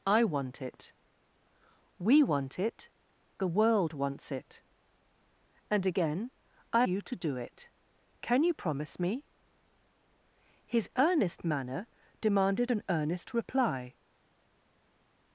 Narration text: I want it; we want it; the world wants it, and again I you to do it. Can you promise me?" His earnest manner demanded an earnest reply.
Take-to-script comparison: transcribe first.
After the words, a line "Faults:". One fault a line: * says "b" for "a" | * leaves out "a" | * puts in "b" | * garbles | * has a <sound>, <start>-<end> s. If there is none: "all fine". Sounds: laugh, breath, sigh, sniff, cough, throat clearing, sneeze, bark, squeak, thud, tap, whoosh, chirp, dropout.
I want it; we want it; the world wants it, and again I you to do it. Can you promise me?" His earnest manner demanded an earnest reply.
Faults:
all fine